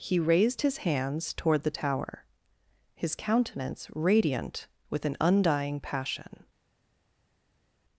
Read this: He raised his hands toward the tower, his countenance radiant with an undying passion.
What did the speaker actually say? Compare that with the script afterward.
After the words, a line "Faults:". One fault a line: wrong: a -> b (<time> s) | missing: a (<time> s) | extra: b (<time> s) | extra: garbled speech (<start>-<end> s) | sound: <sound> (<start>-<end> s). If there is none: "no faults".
He raised his hands toward the tower, his countenance radiant with an undying passion.
Faults:
no faults